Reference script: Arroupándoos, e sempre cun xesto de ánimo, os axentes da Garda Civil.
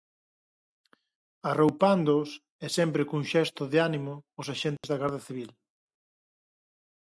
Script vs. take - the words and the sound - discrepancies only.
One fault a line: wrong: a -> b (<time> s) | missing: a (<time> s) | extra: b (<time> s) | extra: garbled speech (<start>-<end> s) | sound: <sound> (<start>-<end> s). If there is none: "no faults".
sound: dropout (4.8-4.8 s)